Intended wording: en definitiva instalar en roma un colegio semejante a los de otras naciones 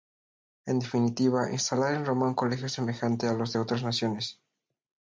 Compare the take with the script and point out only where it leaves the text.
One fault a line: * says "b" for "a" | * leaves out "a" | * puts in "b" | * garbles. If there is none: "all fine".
all fine